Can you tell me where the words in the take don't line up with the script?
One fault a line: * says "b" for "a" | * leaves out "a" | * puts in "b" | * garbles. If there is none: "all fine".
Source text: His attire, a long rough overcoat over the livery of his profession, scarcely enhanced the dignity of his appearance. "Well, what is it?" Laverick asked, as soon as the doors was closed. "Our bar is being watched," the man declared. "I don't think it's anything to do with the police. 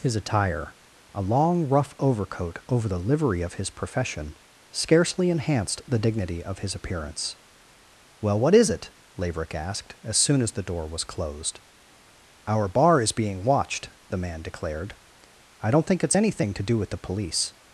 * says "door" for "doors"